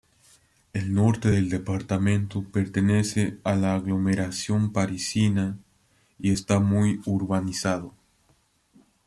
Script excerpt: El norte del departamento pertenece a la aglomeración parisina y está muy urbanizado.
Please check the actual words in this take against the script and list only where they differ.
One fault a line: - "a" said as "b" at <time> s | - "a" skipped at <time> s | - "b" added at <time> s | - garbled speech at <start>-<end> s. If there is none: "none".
none